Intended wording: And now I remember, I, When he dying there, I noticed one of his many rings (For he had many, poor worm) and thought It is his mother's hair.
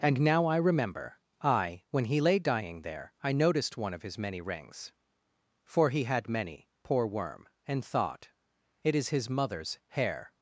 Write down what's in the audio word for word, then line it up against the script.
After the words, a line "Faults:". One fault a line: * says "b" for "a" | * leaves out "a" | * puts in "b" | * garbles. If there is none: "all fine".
And now I remember, I, When he lay dying there, I noticed one of his many rings (For he had many, poor worm) and thought It is his mother's hair.
Faults:
* puts in "lay"